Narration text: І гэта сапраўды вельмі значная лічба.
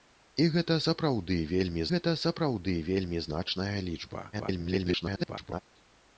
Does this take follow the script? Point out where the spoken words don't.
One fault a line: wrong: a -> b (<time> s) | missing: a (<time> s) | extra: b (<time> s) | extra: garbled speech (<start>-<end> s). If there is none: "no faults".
extra: гэта сапраўды вельмі (1.9 s)
extra: garbled speech (4.3-5.6 s)